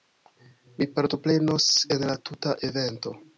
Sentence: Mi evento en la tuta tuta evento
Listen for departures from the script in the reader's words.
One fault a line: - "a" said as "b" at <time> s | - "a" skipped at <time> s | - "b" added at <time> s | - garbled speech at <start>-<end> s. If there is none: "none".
- "evento" said as "partoprenos" at 0.9 s
- "tuta" skipped at 2.5 s